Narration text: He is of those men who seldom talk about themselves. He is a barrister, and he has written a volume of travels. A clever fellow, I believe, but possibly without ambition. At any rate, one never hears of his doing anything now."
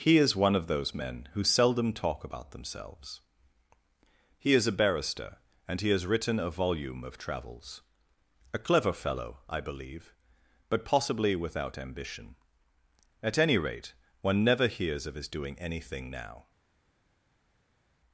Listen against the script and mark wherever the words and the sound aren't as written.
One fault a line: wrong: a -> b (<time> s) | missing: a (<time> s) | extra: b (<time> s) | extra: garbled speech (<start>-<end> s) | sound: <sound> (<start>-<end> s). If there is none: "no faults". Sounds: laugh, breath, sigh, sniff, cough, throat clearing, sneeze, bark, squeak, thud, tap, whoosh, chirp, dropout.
extra: one (0.3 s)